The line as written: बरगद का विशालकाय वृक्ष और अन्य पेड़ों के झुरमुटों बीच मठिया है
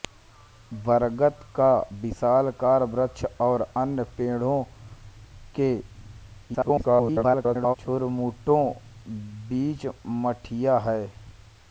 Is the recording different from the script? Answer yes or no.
yes